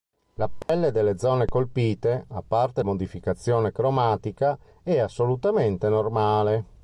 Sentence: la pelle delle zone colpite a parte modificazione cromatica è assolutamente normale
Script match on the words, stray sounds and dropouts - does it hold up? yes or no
no